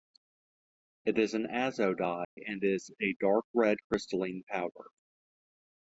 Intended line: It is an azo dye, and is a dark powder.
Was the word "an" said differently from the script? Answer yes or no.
no